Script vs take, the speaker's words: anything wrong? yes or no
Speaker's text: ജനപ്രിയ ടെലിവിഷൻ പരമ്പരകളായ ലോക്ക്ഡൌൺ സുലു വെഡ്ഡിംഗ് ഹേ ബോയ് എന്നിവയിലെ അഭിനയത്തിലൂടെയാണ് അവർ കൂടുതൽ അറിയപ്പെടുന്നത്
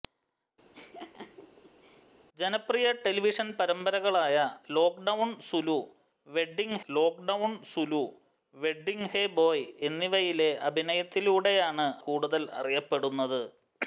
yes